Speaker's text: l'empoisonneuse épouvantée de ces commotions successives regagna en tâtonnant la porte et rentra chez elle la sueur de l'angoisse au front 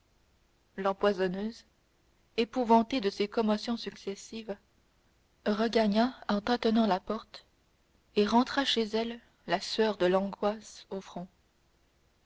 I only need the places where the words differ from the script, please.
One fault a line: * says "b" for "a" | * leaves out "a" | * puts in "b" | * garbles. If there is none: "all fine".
all fine